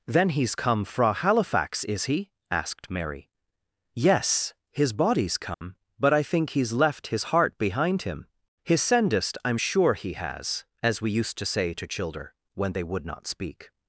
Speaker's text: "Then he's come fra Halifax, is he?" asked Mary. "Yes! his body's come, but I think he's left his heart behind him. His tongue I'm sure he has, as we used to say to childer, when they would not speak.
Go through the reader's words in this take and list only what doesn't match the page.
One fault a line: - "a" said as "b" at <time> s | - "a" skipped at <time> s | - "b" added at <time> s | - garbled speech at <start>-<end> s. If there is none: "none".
- "tongue" said as "sendest" at 8.8 s